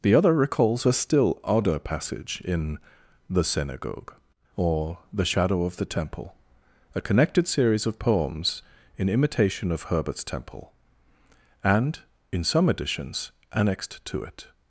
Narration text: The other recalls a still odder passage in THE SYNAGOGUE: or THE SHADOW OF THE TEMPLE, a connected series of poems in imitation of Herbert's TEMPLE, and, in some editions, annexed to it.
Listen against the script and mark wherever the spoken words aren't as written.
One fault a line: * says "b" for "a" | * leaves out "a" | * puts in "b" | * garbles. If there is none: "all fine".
all fine